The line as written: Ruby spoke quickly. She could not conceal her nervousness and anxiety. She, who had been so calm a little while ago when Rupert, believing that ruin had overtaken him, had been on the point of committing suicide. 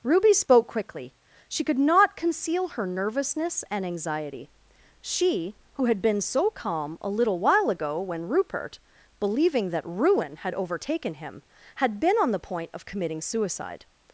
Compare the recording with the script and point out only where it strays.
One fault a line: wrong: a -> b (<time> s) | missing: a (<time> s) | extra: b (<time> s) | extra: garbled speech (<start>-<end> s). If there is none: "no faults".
no faults